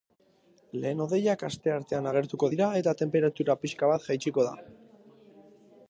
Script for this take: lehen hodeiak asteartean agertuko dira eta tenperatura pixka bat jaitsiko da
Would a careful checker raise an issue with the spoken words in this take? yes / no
no